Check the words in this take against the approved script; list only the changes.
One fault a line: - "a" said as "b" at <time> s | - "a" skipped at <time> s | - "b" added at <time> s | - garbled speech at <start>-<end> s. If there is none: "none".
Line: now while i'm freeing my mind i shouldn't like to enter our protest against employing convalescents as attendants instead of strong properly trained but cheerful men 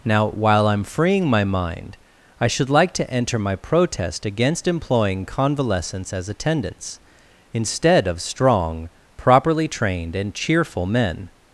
- "shouldn't" said as "should" at 2.5 s
- "our" said as "my" at 3.4 s
- "but" said as "and" at 10.2 s